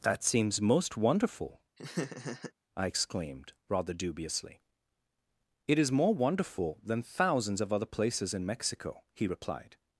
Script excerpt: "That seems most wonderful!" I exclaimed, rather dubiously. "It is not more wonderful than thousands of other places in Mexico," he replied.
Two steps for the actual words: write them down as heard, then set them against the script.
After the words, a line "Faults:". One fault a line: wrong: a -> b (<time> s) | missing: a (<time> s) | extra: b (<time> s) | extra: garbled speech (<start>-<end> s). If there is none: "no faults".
"That seems most wonderful!" I exclaimed, rather dubiously. "It is more wonderful than thousands of other places in Mexico," he replied.
Faults:
missing: not (5.9 s)